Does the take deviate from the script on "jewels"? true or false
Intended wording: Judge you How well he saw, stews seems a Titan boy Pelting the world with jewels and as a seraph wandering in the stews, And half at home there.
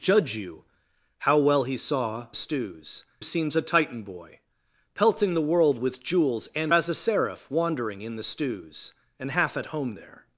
false